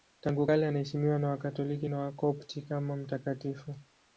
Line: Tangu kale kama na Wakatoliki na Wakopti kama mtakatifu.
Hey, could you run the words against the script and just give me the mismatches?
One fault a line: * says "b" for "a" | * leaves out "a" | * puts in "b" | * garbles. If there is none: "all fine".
* says "anaheshimiwa" for "kama"